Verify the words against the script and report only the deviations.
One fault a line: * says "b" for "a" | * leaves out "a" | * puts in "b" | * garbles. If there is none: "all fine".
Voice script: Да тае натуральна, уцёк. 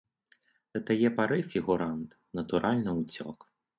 * puts in "пары фігурант"